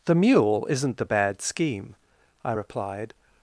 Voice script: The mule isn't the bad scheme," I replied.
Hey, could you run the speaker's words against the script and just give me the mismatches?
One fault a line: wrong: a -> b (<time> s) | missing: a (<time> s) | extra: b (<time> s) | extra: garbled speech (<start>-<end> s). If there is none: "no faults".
no faults